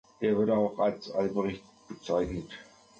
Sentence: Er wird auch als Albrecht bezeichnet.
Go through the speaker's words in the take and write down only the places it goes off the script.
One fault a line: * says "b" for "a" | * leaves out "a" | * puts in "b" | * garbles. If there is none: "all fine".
all fine